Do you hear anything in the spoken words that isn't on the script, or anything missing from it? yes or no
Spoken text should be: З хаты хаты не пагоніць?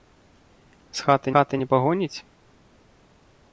no